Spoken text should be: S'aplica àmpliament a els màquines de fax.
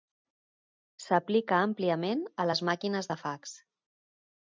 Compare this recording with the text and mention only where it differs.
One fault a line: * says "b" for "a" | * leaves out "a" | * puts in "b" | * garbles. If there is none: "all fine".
* says "les" for "els"